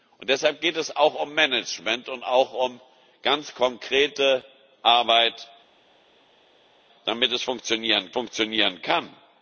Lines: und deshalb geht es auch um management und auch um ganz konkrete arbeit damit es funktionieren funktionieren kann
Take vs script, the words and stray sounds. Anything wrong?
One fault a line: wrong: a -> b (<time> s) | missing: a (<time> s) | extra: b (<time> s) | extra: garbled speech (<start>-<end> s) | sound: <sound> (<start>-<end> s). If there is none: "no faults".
no faults